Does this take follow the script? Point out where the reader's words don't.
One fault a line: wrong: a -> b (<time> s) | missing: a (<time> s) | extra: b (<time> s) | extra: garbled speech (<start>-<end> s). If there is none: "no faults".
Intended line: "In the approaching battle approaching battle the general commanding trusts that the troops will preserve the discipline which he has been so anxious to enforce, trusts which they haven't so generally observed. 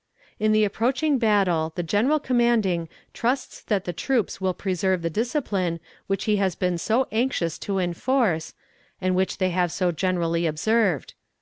missing: approaching battle (1.7 s)
wrong: trusts -> and (9.0 s)
wrong: haven't -> have (9.5 s)